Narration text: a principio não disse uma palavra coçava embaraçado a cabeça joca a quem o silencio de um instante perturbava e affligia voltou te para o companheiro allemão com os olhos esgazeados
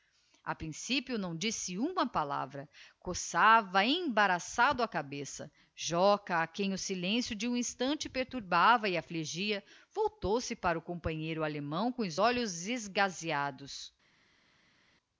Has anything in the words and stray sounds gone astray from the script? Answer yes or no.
yes